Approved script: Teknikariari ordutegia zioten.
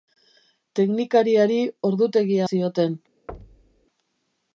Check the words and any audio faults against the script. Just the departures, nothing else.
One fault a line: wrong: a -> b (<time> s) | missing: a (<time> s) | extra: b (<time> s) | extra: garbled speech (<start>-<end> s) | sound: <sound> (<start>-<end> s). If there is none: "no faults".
sound: thud (3.3-3.9 s)